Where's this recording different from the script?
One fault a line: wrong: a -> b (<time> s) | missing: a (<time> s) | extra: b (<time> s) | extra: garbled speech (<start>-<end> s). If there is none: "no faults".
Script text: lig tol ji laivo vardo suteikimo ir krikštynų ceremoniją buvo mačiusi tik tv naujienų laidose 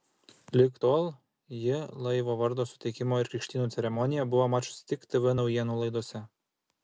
no faults